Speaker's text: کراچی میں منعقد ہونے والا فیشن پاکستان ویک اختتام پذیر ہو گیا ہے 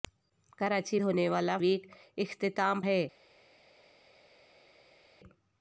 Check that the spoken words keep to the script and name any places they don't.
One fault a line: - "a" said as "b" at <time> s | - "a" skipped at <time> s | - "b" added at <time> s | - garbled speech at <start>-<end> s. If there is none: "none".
- "میں منعقد" skipped at 1.0 s
- "فیشن پاکستان" skipped at 1.6 s
- "پذیر ہو گیا" skipped at 2.8 s